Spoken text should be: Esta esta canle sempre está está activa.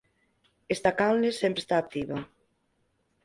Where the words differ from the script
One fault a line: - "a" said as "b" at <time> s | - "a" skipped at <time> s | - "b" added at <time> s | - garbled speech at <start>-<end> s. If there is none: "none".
- "esta" skipped at 0.9 s
- "está" skipped at 1.7 s